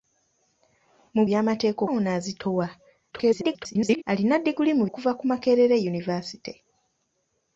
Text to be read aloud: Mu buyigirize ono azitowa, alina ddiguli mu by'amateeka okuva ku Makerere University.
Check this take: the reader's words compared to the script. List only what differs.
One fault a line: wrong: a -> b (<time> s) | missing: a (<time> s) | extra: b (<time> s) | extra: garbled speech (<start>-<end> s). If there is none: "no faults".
wrong: buyigirize -> by'amateeka (1.3 s)
extra: garbled speech (3.1-4.0 s)
missing: by'amateeka (4.8 s)